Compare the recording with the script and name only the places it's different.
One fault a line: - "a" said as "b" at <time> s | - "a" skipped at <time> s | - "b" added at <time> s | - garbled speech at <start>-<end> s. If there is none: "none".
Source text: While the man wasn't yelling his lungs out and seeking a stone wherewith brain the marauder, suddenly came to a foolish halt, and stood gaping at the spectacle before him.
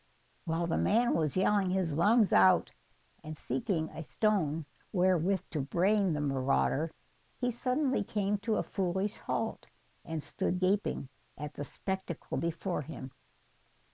- "wasn't" said as "was" at 1.1 s
- "to" added at 5.5 s
- "he" added at 7.3 s